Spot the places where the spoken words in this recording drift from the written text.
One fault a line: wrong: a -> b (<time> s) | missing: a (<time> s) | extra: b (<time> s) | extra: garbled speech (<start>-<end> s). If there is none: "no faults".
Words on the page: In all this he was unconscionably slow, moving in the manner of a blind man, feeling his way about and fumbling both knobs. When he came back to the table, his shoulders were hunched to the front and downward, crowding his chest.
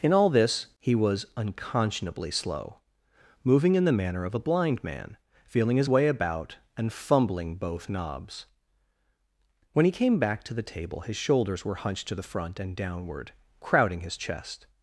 no faults